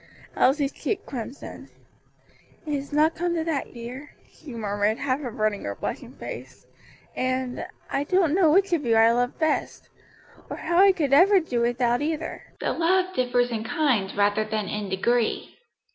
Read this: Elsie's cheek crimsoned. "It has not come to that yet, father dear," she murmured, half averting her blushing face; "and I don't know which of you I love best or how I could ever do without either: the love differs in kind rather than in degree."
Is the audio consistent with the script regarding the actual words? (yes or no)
no